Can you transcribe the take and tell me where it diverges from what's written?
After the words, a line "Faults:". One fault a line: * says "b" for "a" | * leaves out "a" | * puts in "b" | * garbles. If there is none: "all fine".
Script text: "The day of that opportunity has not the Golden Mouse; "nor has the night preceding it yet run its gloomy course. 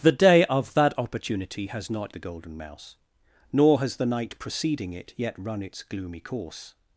"The day of that opportunity has not the Golden Mouse; "nor has the night preceding it yet run its gloomy course.
Faults:
all fine